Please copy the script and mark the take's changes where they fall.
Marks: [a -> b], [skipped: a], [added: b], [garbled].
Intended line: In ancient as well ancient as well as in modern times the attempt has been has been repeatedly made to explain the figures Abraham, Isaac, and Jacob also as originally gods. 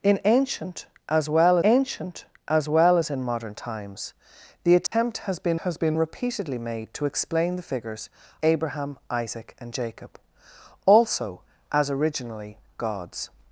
In ancient as well ancient as well as in modern times the attempt has been has been repeatedly made to explain the figures Abraham, Isaac, and Jacob also as originally gods.